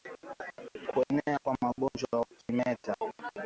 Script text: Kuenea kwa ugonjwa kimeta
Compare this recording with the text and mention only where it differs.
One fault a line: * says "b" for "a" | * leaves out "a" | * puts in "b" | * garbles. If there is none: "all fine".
all fine